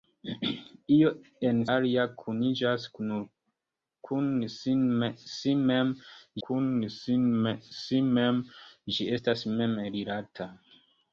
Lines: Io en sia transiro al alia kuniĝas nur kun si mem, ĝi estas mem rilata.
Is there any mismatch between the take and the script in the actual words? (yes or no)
yes